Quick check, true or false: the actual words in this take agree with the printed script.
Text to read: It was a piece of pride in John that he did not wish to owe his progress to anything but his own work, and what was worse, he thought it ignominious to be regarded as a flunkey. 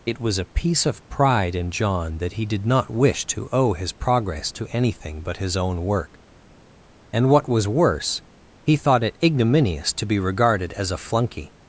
true